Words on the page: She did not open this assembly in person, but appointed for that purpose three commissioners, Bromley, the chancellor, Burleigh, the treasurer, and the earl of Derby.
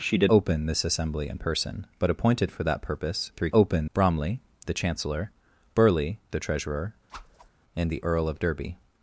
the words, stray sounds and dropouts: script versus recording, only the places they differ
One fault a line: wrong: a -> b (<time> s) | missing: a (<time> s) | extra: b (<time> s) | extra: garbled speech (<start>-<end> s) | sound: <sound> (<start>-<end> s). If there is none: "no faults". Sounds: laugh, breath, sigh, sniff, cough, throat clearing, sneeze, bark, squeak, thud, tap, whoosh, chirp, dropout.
missing: not (0.3 s)
wrong: commissioners -> open (3.5 s)
sound: whoosh (7.1-7.5 s)